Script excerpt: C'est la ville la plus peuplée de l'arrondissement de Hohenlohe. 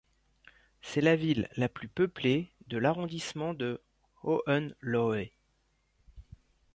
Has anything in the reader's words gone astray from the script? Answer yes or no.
no